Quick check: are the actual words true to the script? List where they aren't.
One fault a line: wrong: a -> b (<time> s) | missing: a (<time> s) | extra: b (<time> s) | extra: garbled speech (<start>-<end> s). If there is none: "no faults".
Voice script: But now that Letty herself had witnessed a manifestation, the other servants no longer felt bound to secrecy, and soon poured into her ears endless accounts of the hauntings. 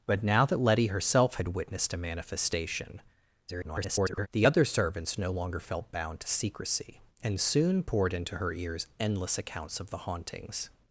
extra: garbled speech (3.5-4.3 s)